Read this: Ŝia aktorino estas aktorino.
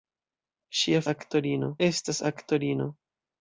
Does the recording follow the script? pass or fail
pass